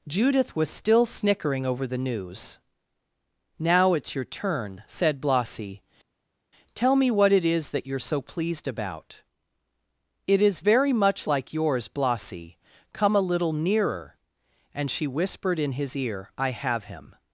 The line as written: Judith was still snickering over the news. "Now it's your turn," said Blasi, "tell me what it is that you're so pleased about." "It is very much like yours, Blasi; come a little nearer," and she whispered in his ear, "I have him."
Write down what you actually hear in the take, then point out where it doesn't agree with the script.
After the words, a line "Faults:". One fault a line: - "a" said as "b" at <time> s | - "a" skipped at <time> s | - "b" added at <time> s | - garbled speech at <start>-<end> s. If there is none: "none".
Judith was still snickering over the news. "Now it's your turn," said Blasi, "tell me what it is that you're so pleased about." "It is very much like yours, Blasi; come a little nearer," and she whispered in his ear, "I have him."
Faults:
none